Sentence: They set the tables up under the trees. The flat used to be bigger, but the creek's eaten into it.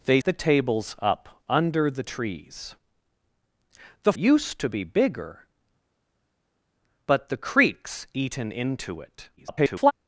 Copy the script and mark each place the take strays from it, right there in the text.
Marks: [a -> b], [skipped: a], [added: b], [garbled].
They [skipped: set] the tables up under the trees. The [skipped: flat] used to be bigger, but the creek's eaten into it. [garbled]